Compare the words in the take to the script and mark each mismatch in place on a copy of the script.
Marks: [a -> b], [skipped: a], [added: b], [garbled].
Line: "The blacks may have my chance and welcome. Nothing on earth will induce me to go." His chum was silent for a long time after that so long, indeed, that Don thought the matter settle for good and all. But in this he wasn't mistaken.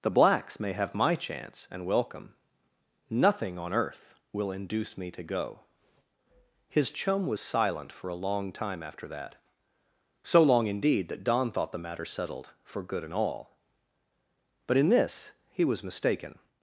"The blacks may have my chance and welcome. Nothing on earth will induce me to go." His chum was silent for a long time after that so long, indeed, that Don thought the matter [settle -> settled] for good and all. But in this he [wasn't -> was] mistaken.